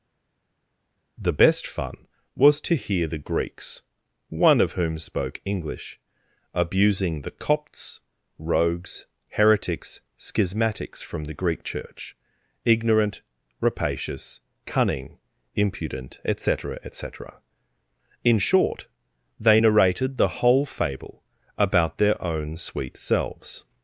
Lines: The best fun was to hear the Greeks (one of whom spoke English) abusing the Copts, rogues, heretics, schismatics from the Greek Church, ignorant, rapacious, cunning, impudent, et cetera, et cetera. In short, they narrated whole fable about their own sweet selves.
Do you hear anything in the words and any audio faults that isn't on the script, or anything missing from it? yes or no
yes